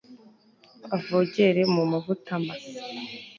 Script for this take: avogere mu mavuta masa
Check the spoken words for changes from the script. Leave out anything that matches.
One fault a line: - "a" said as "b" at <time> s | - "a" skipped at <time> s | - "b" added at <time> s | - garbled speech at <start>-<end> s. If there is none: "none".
none